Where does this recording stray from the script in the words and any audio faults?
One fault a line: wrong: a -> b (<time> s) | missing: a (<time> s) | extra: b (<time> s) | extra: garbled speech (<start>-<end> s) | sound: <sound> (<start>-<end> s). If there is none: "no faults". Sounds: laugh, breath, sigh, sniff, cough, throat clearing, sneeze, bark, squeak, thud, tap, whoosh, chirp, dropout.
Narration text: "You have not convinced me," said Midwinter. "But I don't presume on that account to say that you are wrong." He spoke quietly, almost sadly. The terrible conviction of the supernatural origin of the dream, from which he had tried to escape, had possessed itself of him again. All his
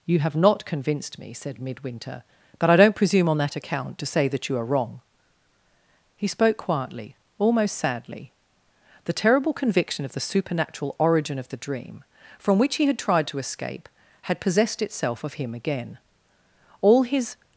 no faults